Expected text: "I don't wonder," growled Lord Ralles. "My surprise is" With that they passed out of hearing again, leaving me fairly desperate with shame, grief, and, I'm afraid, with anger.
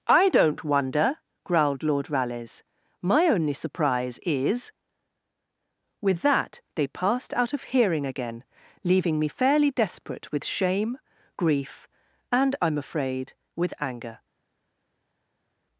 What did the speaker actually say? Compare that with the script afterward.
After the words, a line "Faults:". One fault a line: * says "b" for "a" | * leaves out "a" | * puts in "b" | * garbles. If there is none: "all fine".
"I don't wonder," growled Lord Ralles. "My only surprise is" With that they passed out of hearing again, leaving me fairly desperate with shame, grief, and, I'm afraid, with anger.
Faults:
* puts in "only"